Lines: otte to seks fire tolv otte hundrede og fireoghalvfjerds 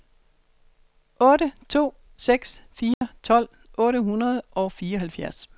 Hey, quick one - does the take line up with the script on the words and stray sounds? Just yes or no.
no